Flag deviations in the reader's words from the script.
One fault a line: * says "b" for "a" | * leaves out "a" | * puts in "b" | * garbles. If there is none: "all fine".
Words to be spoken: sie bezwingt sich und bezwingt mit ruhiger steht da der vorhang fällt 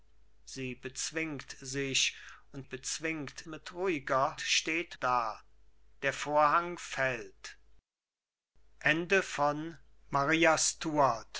all fine